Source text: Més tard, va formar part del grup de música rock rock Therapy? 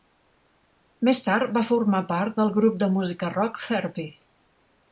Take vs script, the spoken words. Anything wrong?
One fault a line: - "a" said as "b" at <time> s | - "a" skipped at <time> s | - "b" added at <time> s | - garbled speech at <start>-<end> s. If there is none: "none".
- "rock" skipped at 3.6 s